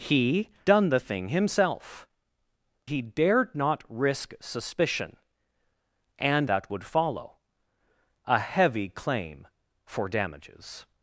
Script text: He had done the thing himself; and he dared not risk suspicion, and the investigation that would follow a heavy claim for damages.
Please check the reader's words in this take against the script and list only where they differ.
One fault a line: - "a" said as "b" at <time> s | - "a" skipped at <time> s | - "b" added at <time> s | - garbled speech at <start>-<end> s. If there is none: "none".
- "had" skipped at 0.5 s
- "and" skipped at 2.1 s
- "the investigation" skipped at 6.5 s